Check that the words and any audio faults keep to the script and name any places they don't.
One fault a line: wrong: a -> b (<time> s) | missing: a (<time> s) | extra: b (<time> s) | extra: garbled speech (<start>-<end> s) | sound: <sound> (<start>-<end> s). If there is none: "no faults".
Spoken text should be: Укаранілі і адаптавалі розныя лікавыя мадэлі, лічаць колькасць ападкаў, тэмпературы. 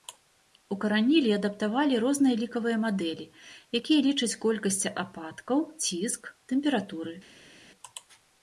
extra: якія (3.8 s)
extra: ціск (5.8 s)